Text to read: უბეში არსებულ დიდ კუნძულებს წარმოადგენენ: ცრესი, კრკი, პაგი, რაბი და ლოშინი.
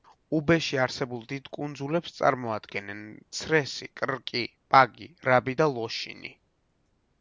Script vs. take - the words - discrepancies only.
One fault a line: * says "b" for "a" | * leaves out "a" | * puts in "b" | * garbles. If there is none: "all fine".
all fine